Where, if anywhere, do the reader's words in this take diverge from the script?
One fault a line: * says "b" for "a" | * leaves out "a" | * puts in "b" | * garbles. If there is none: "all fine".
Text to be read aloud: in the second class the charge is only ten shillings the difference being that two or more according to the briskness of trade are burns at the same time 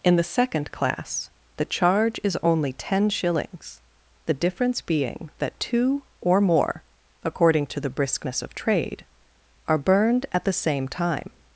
* says "burned" for "burns"